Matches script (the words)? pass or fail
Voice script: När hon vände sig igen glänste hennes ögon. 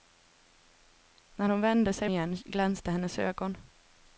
pass